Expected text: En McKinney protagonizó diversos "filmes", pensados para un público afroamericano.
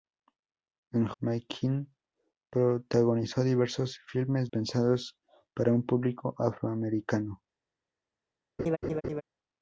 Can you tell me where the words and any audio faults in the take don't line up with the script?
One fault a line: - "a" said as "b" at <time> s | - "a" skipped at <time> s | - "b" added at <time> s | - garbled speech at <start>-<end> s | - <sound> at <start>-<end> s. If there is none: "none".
- laugh at 8.6-9.2 s